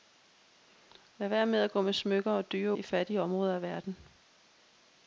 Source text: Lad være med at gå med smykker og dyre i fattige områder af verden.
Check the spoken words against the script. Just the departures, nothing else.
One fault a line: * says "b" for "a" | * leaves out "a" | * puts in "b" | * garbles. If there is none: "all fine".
all fine